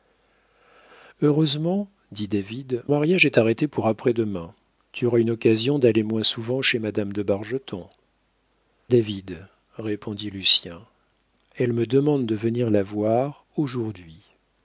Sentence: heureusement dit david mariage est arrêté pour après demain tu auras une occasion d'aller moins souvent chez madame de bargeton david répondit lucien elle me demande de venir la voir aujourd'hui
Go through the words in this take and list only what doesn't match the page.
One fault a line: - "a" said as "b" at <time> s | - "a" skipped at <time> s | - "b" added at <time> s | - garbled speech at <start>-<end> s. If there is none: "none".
none